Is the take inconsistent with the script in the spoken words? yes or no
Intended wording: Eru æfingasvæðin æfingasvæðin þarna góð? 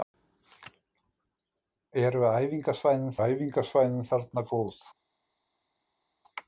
no